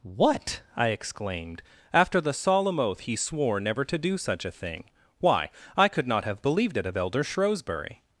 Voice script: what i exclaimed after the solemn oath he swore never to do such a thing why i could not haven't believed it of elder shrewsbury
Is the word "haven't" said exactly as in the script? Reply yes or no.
no